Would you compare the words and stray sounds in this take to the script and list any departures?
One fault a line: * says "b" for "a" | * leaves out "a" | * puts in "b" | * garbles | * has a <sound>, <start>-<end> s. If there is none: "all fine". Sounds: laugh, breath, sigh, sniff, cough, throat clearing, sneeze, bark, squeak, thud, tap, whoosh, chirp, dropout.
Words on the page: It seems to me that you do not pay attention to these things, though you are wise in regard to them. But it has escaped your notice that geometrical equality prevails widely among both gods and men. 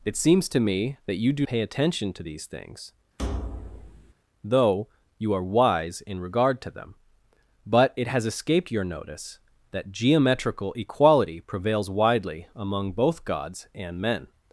* leaves out "not"
* has a thud, 3.2-4.1 s